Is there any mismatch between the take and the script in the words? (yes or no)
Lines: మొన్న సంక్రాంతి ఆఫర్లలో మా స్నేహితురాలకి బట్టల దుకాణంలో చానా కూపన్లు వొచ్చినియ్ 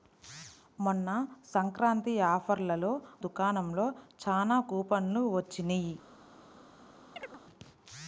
yes